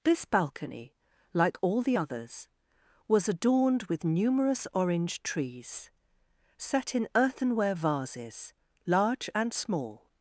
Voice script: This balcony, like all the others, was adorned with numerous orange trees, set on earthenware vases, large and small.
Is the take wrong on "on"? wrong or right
wrong